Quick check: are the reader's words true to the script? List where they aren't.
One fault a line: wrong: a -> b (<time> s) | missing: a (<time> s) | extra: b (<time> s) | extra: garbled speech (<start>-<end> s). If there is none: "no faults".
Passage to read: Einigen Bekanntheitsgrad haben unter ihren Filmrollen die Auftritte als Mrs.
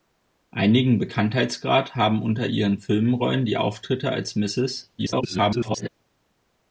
extra: garbled speech (5.0-5.9 s)